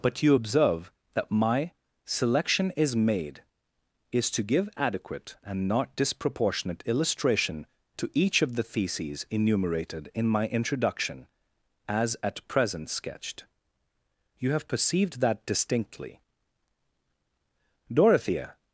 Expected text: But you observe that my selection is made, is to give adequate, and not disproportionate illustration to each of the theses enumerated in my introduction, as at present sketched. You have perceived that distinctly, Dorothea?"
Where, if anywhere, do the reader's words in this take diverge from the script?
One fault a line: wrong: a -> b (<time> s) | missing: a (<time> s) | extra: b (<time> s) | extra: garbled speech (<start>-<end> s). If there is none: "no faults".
no faults